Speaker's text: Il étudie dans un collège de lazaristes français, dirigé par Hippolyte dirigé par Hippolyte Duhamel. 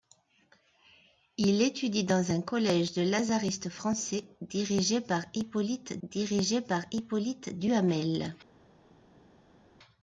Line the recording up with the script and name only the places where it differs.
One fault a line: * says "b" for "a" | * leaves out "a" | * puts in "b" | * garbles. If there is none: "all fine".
all fine